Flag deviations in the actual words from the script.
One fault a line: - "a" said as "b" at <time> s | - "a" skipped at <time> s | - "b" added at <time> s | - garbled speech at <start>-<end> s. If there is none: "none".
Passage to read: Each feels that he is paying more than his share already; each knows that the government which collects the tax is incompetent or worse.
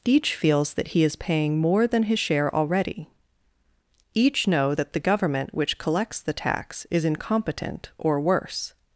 - "knows" said as "know" at 4.5 s